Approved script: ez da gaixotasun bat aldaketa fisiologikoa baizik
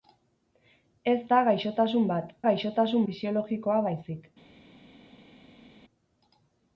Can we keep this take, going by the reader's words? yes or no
no